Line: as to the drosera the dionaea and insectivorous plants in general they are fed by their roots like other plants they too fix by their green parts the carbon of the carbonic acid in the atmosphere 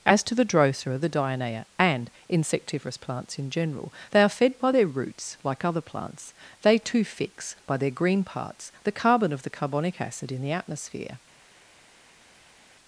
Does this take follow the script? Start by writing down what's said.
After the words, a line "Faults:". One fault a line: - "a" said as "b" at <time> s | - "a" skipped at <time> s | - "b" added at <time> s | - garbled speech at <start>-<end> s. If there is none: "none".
as to the drosera the dionaea and insectivorous plants in general they are fed by their roots like other plants they too fix by their green parts the carbon of the carbonic acid in the atmosphere
Faults:
none